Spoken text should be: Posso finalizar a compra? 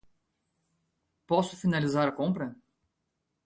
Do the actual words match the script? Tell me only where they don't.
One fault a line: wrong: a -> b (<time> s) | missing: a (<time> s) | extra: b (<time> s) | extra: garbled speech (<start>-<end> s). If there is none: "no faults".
no faults